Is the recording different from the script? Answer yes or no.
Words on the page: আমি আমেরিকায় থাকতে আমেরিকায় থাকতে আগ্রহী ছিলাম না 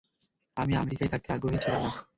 yes